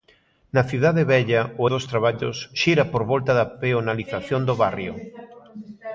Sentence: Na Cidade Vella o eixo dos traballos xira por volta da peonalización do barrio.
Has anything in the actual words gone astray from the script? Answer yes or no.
yes